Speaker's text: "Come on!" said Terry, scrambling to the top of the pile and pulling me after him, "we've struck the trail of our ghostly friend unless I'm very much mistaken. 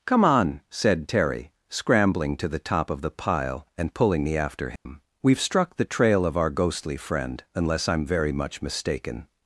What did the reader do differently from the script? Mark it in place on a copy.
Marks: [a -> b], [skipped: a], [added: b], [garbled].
"Come on!" said Terry, scrambling to the top of the pile and pulling me after him, "we've struck the trail of our ghostly friend unless I'm very much mistaken.